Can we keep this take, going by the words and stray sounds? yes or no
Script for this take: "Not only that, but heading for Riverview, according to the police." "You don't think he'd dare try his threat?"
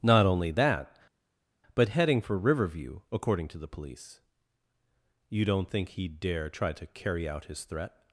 no